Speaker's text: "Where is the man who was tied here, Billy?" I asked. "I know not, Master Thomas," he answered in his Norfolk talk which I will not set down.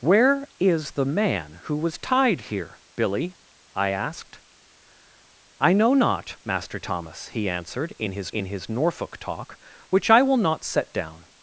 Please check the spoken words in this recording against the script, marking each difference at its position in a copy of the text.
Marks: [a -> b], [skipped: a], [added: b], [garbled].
"Where is the man who was tied here, Billy?" I asked. "I know not, Master Thomas," he answered in his [added: in his] Norfolk talk which I will not set down.